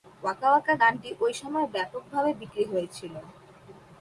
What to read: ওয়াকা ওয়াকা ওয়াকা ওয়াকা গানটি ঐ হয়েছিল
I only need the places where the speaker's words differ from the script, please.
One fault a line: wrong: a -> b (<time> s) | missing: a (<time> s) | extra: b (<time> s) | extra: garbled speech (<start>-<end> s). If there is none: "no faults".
wrong: ওয়াকা ওয়াকা গানটি ঐ -> গানটি ঐ সময়ে ব্যাপকভাবে বিক্রি (0.8 s)